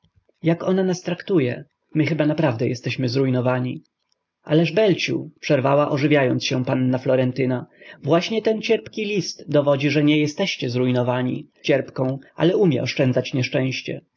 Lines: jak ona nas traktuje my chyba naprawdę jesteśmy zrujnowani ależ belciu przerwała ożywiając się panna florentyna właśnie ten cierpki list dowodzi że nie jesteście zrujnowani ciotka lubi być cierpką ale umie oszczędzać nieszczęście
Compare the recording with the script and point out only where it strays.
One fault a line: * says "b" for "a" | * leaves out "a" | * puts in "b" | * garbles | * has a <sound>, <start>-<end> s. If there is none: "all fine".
* leaves out "ciotka lubi być"